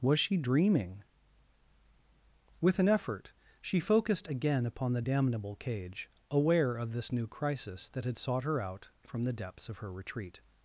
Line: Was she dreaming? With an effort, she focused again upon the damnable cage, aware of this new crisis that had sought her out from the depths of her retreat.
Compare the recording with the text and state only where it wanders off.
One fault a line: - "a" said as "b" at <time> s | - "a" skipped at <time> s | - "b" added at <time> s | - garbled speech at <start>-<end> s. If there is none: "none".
none